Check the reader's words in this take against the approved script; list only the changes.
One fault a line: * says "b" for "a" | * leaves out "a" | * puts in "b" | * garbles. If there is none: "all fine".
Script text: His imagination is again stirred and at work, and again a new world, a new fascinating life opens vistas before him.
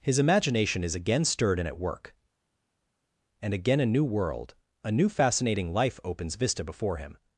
* says "vista" for "vistas"